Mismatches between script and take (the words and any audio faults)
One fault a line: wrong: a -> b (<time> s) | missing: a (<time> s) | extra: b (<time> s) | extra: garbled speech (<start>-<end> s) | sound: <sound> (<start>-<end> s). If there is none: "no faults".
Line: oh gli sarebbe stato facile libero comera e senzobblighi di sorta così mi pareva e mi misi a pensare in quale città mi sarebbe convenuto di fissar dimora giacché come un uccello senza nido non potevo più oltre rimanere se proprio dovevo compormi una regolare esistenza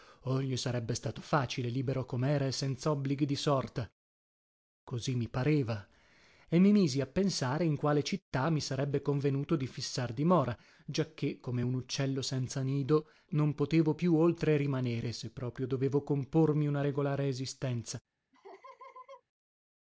sound: laugh (18.3-19.2 s)